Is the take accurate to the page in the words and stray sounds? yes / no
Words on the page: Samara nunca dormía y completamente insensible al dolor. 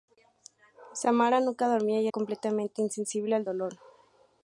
yes